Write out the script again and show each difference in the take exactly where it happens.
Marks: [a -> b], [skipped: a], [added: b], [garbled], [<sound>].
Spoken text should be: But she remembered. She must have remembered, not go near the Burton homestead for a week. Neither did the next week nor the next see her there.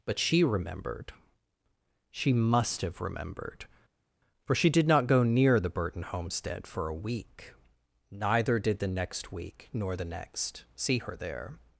But she remembered. She must have remembered, [added: for she did] not go near the Burton homestead for a week. Neither did the next week nor the next see her there.